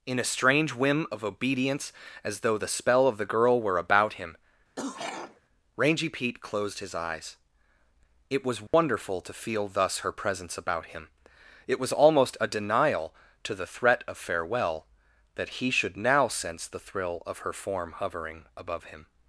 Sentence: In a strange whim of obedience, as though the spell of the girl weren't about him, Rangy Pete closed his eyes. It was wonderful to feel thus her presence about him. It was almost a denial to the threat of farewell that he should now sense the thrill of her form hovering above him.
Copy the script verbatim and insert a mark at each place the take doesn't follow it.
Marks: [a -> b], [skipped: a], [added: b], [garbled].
In a strange whim of obedience, as though the spell of the girl [weren't -> were] about him, Rangy Pete closed his eyes. It was wonderful to feel thus her presence about him. It was almost a denial to the threat of farewell that he should now sense the thrill of her form hovering above him.